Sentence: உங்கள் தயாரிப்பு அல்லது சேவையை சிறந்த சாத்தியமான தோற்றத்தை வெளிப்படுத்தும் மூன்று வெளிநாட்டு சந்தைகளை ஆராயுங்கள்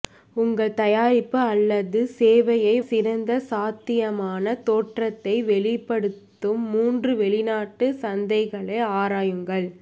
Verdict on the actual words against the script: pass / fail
pass